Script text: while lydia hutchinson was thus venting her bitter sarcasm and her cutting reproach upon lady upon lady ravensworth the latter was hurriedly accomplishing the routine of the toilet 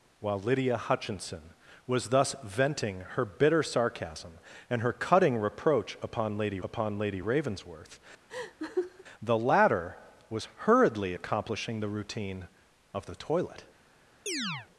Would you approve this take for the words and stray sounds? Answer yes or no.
no